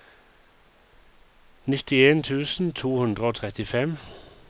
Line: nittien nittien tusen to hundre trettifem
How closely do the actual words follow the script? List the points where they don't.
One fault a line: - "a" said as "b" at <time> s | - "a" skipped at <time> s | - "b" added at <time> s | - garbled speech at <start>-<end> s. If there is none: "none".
- "nittien" skipped at 2.2 s
- "og" added at 3.2 s